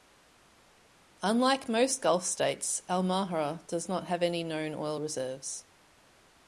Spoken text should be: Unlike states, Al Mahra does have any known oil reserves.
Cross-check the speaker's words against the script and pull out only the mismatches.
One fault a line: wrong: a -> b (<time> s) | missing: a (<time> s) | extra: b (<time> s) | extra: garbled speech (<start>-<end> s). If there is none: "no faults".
extra: most Gulf (1.7 s)
extra: not (3.9 s)